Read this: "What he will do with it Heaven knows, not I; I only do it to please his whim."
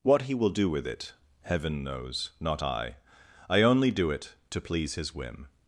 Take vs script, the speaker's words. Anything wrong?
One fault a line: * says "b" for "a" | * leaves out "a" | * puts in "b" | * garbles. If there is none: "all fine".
all fine